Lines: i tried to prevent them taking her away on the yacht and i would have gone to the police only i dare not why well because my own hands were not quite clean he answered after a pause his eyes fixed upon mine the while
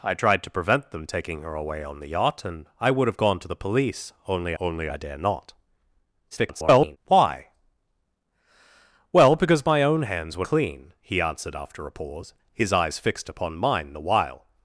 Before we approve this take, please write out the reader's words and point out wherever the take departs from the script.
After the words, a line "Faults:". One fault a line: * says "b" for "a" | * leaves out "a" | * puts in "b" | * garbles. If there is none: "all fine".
i tried to prevent them taking her away on the yacht and i would have gone to the police only only i dare not [garbled] why well because my own hands were clean he answered after a pause his eyes fixed upon mine the while
Faults:
* puts in "only"
* garbles
* leaves out "not quite"